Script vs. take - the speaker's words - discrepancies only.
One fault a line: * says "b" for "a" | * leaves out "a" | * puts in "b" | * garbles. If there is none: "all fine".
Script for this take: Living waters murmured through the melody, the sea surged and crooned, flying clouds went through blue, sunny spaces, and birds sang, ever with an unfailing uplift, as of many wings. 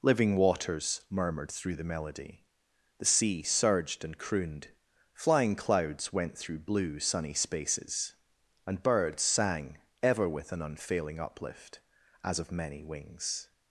all fine